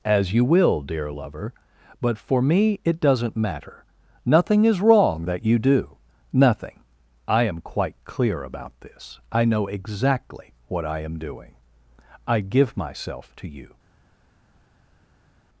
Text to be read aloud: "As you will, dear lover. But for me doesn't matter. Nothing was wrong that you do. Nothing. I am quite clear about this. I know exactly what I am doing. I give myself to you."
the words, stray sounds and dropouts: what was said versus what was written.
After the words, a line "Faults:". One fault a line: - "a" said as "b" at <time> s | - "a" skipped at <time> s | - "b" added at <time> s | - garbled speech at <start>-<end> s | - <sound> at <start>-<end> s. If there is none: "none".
"As you will, dear lover. But for me it doesn't matter. Nothing is wrong that you do. Nothing. I am quite clear about this. I know exactly what I am doing. I give myself to you."
Faults:
- "it" added at 2.8 s
- "was" said as "is" at 4.6 s